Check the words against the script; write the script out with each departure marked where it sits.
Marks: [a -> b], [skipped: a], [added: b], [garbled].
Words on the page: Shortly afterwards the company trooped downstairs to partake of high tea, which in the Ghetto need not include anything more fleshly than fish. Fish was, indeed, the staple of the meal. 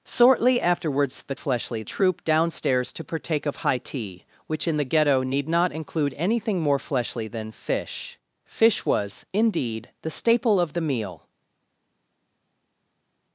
Shortly afterwards the [company -> fleshly] trooped downstairs to partake of high tea, which in the Ghetto need not include anything more fleshly than fish. Fish was, indeed, the staple of the meal.